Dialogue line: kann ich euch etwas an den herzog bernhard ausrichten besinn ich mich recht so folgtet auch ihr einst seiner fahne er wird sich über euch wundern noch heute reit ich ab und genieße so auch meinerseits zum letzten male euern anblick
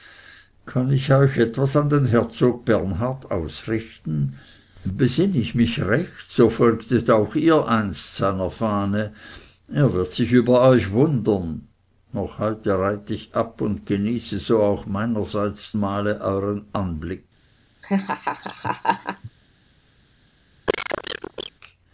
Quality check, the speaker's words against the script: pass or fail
fail